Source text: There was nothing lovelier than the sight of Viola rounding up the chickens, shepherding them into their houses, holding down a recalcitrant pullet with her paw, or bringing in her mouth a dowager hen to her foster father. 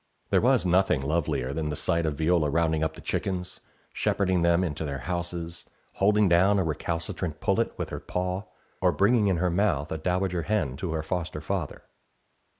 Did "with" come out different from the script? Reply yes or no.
no